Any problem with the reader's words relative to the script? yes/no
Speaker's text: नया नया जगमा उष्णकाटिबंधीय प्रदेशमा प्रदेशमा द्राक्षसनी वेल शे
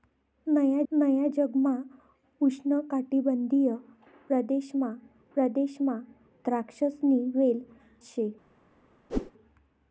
no